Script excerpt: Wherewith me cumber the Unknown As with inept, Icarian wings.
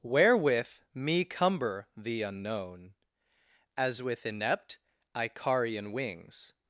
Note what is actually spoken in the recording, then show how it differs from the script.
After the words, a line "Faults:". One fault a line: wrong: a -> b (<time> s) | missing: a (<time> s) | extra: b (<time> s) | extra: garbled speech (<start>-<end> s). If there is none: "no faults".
Wherewith me cumber the Unknown As with inept, Icarian wings.
Faults:
no faults